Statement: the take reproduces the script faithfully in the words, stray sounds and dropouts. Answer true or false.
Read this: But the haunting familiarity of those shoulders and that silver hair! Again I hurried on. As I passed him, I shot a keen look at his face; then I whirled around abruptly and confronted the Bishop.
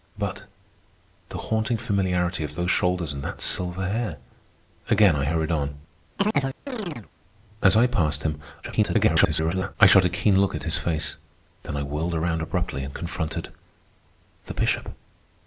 false